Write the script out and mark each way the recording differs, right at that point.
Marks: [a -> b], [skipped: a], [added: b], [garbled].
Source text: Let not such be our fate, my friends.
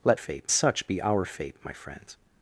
Let [not -> fate] such be our fate, my friends.